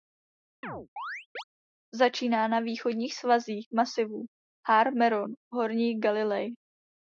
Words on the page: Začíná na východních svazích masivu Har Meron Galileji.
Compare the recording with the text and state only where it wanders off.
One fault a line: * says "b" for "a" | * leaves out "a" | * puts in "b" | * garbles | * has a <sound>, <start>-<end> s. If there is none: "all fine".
* has a chirp, 0.6-1.4 s
* puts in "v Horní"